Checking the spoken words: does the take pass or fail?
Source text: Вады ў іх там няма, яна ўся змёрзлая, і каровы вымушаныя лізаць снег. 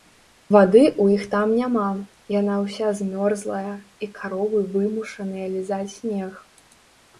pass